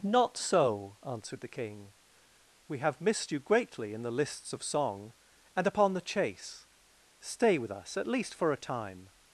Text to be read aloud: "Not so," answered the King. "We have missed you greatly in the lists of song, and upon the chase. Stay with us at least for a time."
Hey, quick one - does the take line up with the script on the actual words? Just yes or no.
yes